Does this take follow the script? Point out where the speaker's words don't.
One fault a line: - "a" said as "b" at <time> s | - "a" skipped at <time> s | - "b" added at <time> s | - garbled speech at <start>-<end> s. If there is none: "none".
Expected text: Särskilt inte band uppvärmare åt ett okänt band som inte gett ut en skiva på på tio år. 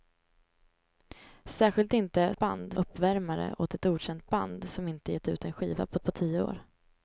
none